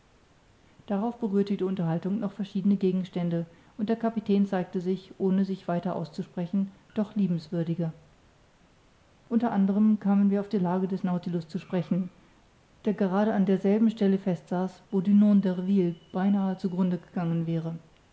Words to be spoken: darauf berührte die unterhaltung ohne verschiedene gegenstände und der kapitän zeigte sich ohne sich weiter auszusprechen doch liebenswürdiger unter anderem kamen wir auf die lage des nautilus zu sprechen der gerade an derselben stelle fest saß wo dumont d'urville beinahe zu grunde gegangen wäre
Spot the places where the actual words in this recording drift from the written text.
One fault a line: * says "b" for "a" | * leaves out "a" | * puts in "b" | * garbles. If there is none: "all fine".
* says "noch" for "ohne"